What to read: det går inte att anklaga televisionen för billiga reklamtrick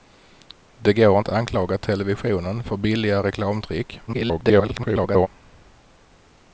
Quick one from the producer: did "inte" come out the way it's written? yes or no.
no